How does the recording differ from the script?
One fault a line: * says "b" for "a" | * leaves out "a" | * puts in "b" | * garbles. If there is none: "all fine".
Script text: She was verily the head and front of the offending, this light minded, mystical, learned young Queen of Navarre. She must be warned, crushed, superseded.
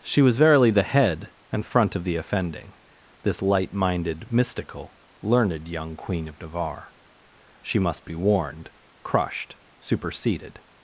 all fine